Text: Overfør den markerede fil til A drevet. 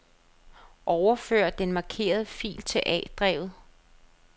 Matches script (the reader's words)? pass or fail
pass